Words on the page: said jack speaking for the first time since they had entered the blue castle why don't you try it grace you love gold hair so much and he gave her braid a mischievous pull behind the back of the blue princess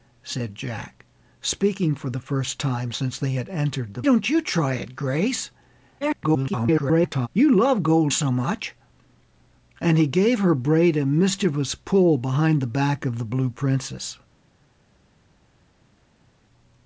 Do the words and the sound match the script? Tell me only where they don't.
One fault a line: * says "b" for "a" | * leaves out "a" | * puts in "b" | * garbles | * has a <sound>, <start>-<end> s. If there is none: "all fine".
* leaves out "blue castle why"
* garbles
* leaves out "hair"